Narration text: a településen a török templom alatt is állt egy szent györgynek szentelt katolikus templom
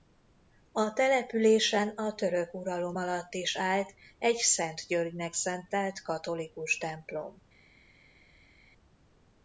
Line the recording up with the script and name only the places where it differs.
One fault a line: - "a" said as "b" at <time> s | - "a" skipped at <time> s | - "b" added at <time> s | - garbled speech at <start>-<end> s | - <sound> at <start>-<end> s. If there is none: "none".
- "templom" said as "uralom" at 2.5 s